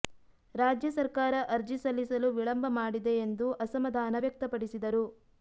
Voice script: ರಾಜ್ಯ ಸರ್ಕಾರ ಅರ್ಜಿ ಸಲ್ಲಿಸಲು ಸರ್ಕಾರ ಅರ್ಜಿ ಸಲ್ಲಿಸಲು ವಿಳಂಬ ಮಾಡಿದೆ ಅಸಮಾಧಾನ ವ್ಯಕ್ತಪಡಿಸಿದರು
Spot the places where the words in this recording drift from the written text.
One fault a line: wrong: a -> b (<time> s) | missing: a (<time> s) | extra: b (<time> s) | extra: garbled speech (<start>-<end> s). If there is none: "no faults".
missing: ಸರ್ಕಾರ ಅರ್ಜಿ ಸಲ್ಲಿಸಲು (2.3 s)
extra: ಎಂದು (3.2 s)